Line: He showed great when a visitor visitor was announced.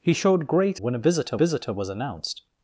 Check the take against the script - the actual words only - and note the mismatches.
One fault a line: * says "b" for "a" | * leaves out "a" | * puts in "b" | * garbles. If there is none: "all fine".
all fine